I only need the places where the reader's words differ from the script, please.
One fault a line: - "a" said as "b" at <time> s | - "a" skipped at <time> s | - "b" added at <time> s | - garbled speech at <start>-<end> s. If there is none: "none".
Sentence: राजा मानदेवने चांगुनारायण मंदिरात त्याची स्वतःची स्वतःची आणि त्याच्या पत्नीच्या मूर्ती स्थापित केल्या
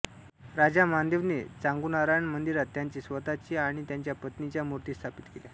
- "स्वतःची" skipped at 3.5 s